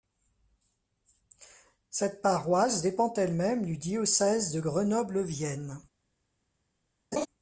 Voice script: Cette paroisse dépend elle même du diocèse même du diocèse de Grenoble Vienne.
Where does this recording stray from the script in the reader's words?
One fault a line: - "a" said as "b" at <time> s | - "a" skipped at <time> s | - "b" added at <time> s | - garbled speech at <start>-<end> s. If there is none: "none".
- "même du diocèse" skipped at 4.5 s